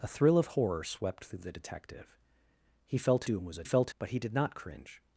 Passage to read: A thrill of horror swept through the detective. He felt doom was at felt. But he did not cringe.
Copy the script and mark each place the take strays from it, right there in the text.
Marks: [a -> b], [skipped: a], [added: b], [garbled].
A thrill of horror swept through the detective. He felt doom was at felt. But he did not cringe.